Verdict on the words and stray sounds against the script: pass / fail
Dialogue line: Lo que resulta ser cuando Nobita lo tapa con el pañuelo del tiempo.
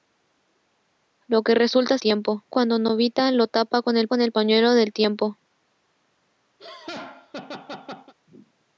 fail